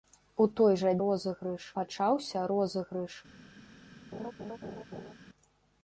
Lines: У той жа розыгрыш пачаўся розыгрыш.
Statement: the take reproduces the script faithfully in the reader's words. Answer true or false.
true